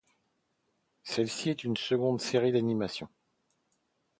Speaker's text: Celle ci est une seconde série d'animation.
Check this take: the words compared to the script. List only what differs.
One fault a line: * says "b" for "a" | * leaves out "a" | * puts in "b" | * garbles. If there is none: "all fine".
all fine